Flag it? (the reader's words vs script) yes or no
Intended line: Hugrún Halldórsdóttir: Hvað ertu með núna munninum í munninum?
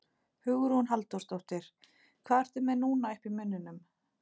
yes